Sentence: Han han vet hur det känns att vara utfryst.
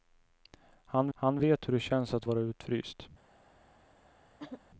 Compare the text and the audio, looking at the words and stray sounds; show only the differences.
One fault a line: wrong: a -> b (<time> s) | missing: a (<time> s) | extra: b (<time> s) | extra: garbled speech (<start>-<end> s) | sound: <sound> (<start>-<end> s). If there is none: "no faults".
sound: throat clearing (4.4-4.6 s)